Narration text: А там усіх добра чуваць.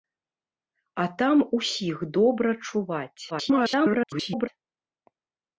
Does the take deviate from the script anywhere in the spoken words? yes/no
yes